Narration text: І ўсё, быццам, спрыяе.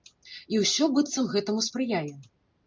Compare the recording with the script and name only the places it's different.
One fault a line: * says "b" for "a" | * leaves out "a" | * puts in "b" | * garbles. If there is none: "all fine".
* puts in "гэтаму"